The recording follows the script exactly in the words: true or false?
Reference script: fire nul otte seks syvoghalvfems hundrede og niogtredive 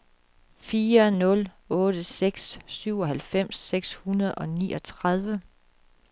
false